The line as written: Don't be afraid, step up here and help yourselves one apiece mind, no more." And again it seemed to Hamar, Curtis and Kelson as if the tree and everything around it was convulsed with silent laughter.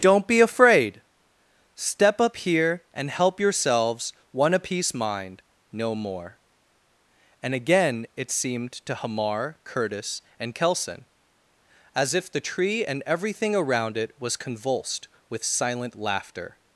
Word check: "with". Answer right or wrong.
right